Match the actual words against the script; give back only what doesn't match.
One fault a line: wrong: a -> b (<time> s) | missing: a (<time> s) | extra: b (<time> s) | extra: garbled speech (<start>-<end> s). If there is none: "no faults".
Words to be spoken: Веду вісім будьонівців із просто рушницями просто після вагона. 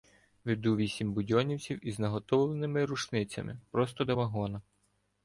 wrong: просто -> наготовленими (2.0 s)
wrong: після -> до (4.0 s)